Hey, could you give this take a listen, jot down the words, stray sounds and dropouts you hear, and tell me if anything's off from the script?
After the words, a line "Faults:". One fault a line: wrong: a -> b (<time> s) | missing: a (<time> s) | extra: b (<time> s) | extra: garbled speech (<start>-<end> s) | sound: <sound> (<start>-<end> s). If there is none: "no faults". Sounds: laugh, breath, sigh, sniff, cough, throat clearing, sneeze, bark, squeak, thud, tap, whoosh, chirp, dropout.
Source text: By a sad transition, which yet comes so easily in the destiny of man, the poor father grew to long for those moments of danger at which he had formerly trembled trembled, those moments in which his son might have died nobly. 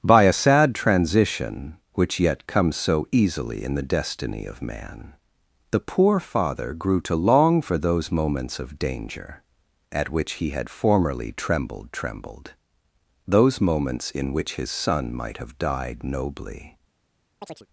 By a sad transition, which yet comes so easily in the destiny of man, the poor father grew to long for those moments of danger at which he had formerly trembled trembled, those moments in which his son might have died nobly.
Faults:
sound: chirp (17.4-17.7 s)